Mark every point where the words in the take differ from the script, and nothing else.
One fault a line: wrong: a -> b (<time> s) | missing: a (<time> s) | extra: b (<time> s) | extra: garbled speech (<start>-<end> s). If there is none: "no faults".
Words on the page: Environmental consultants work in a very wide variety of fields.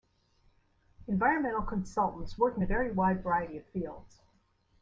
no faults